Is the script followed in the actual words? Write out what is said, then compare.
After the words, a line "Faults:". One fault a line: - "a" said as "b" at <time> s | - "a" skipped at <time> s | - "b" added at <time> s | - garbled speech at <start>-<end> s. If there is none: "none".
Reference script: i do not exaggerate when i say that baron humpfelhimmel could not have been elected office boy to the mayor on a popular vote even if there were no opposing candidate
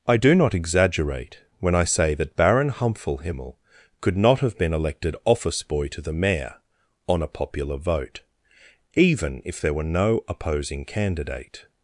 i do not exaggerate when i say that baron humpfelhimmel could not have been elected office boy to the mayor on a popular vote even if there were no opposing candidate
Faults:
none